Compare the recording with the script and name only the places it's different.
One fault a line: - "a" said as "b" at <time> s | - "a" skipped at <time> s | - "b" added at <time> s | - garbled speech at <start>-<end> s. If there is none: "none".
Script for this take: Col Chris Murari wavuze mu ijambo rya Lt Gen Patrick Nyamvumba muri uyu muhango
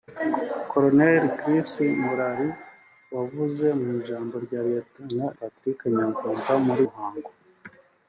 - "Gen" skipped at 4.9 s
- "uyu" skipped at 6.8 s